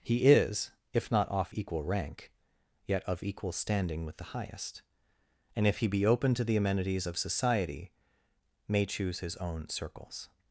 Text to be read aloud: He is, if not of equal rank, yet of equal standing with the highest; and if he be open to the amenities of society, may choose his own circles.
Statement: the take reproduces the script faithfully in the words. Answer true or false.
false